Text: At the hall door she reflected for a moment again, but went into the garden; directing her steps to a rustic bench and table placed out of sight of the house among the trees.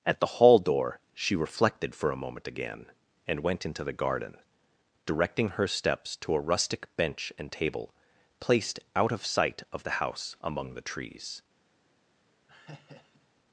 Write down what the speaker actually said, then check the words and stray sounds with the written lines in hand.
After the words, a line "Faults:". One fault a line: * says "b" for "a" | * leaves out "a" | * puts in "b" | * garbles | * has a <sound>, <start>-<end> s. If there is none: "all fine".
At the hall door she reflected for a moment again, and went into the garden; directing her steps to a rustic bench and table placed out of sight of the house among the trees.
Faults:
* says "and" for "but"
* has a laugh, 12.5-13.3 s